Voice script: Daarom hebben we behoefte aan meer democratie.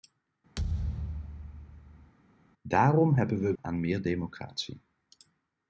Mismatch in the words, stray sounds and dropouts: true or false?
true